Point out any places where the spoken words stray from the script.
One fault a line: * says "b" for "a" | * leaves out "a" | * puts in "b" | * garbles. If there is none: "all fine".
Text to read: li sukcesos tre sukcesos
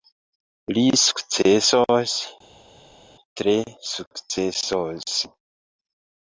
all fine